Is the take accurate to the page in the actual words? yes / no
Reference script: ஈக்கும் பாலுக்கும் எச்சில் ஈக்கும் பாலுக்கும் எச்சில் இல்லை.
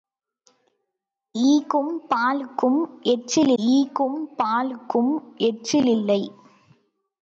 yes